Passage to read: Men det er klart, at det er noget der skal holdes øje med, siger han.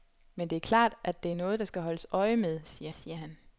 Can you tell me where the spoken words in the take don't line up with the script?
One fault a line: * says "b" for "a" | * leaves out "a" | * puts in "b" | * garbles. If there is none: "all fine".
* puts in "siger"